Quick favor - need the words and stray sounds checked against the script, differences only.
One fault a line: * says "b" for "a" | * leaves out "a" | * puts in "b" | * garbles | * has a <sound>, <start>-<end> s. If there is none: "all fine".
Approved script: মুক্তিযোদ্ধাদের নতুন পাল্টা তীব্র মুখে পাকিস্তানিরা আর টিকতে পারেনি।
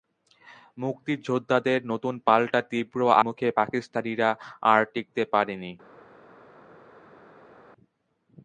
all fine